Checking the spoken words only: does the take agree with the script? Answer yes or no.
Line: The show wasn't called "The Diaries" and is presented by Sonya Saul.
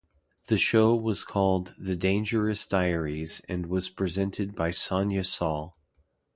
no